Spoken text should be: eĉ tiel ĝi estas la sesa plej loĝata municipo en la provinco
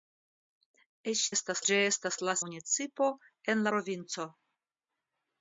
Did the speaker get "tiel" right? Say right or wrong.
wrong